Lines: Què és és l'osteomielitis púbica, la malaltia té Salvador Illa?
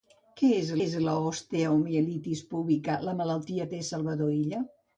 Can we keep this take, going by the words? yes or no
yes